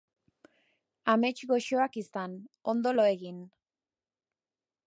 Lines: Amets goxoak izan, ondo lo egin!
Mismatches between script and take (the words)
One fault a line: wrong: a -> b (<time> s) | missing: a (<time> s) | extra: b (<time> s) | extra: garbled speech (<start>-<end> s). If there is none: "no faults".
no faults